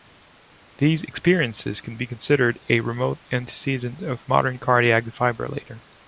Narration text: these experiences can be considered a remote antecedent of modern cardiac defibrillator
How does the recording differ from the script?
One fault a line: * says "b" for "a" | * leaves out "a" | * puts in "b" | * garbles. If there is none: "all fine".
all fine